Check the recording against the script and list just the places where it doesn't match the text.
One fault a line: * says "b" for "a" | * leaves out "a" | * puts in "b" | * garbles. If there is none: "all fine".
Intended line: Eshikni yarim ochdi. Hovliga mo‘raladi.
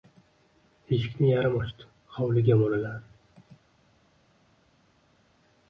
all fine